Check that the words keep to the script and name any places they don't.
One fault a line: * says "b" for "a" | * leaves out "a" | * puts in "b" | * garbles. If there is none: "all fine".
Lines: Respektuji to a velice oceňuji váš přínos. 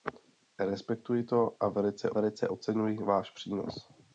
* puts in "velice"